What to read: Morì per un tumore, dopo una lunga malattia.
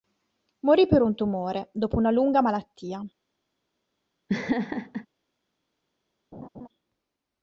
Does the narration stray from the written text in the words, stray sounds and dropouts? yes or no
yes